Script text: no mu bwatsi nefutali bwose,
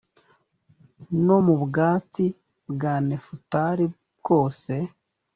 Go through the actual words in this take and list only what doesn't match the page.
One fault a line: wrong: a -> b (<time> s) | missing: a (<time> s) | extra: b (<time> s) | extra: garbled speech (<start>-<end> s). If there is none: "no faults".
extra: bwa (2.7 s)